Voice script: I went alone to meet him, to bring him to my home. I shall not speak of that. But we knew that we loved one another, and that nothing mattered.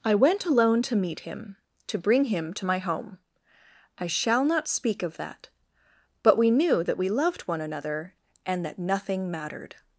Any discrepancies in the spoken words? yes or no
no